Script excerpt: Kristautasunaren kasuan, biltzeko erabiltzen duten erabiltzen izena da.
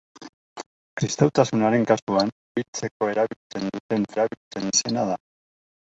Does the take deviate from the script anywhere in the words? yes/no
no